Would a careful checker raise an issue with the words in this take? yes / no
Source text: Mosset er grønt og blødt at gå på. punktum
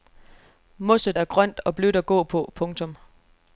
no